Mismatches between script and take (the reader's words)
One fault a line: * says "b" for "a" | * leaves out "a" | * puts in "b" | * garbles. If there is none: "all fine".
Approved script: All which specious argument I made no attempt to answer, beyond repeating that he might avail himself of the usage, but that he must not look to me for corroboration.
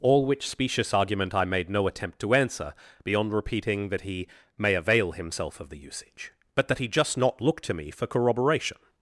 * says "may" for "might"
* says "just" for "must"